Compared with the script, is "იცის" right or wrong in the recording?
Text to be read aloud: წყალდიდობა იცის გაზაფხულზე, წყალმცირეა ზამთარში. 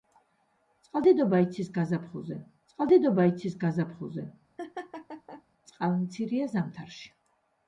right